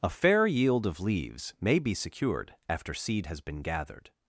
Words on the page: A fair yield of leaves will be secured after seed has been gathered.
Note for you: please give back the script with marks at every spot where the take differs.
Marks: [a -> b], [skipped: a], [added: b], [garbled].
A fair yield of leaves [will -> may] be secured after seed has been gathered.